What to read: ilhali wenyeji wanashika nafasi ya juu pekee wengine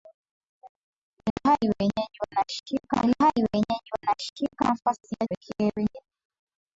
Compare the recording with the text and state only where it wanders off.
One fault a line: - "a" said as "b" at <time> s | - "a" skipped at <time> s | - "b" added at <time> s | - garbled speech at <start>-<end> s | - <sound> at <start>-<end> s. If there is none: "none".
- dropout at 1.3-1.4 s
- "ilhali wenyeji wanashika" added at 3.0 s
- "juu" skipped at 5.3 s